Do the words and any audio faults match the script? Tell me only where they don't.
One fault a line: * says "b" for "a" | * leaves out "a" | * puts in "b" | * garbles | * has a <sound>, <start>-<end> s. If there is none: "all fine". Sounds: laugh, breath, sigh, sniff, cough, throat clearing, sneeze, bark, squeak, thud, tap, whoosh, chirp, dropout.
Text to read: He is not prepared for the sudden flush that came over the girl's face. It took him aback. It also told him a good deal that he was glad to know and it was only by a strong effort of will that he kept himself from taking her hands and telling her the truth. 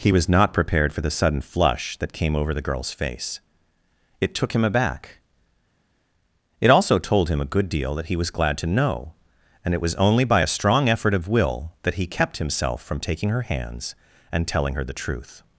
* says "was" for "is"